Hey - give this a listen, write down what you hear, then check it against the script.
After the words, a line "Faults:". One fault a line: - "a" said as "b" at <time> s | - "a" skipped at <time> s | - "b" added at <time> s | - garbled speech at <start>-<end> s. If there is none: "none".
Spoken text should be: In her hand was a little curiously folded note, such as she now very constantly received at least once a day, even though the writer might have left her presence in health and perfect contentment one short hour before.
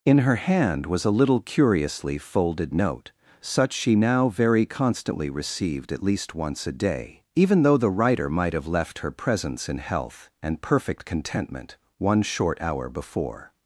In her hand was a little curiously folded note, such she now very constantly received at least once a day, even though the writer might have left her presence in health and perfect contentment one short hour before.
Faults:
- "as" skipped at 3.7 s